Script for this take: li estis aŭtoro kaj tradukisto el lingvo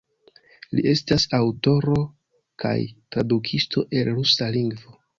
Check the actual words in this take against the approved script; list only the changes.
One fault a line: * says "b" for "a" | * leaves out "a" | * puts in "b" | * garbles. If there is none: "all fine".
* says "estas" for "estis"
* puts in "rusa"